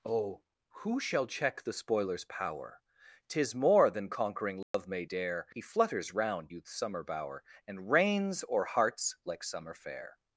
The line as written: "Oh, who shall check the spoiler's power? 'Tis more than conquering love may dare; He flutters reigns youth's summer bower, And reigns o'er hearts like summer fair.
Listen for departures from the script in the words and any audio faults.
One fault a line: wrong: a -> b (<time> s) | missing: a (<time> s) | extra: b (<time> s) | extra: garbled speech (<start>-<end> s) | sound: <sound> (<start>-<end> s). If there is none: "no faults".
sound: dropout (4.6-4.7 s)
wrong: reigns -> round (6.1 s)